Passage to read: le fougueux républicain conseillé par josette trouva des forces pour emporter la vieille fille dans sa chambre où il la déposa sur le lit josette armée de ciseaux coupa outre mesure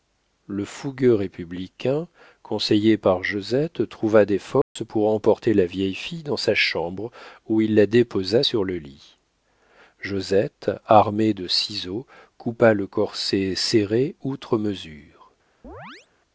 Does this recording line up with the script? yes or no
no